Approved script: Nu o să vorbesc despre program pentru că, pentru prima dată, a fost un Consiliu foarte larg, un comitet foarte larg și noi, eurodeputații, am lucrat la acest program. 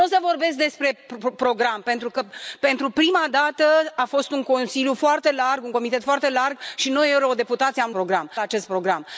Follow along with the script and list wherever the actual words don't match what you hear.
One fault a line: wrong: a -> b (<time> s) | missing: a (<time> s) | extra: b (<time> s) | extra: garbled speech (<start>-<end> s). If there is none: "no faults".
wrong: lucrat -> program (7.9 s)